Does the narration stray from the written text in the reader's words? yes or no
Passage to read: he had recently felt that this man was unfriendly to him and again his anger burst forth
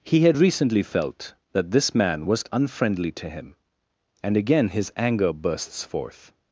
yes